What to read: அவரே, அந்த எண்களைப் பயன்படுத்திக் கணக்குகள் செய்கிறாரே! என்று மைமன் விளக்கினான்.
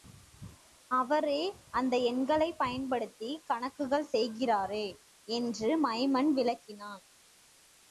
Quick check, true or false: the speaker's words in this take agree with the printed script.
true